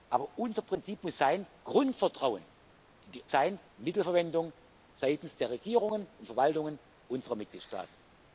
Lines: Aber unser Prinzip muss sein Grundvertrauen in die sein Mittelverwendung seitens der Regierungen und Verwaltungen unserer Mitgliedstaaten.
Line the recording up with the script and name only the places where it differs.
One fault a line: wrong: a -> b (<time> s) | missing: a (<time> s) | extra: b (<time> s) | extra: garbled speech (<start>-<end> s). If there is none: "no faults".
no faults